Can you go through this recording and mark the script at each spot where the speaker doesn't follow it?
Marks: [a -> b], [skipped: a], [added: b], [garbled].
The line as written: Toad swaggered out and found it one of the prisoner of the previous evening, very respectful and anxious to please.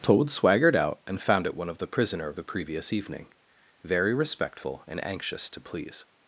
Toad swaggered out and found it one of the prisoner of the previous evening, very respectful and anxious to please.